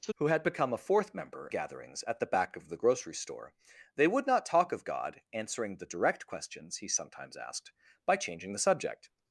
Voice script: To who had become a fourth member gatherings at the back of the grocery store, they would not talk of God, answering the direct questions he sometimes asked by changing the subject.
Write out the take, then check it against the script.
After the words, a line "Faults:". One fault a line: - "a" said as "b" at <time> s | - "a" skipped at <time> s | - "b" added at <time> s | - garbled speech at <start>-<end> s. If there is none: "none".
To who had become a fourth member gatherings at the back of the grocery store, they would not talk of God, answering the direct questions he sometimes asked by changing the subject.
Faults:
none